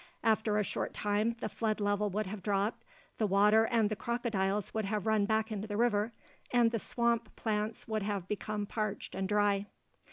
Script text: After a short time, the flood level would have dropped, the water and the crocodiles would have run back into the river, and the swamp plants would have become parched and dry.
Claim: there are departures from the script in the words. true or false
false